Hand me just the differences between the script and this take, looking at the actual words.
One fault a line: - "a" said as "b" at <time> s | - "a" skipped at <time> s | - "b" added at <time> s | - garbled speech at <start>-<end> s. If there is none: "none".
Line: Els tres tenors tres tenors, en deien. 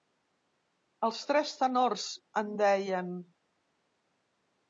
- "tres tenors" skipped at 2.0 s